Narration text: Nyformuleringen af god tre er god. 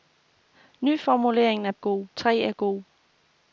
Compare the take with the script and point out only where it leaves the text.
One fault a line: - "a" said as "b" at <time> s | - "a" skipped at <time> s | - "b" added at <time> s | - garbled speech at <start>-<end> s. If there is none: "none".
none